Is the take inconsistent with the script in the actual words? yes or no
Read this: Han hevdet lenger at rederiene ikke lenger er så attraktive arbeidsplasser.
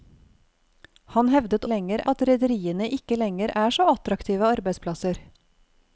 no